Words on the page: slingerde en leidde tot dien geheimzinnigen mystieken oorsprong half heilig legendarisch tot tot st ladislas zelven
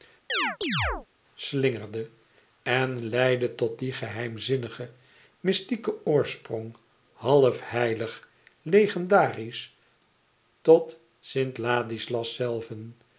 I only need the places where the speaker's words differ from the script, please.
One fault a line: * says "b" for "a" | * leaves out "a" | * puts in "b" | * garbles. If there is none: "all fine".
* leaves out "tot"